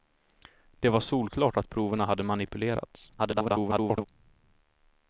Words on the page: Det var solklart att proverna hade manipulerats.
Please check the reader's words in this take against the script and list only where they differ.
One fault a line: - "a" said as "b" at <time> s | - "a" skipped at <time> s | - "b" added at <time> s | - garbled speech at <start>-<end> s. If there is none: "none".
- garbled speech at 3.2-4.1 s